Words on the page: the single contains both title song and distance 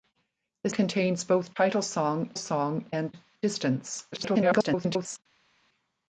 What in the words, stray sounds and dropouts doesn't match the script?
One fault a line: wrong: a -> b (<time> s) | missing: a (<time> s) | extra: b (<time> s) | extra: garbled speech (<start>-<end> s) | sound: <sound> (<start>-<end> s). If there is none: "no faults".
missing: single (0.7 s)
extra: song (2.4 s)
extra: garbled speech (4.1-5.2 s)